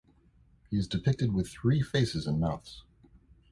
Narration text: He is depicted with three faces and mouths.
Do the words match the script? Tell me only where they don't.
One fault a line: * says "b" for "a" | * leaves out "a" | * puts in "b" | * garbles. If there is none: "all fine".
all fine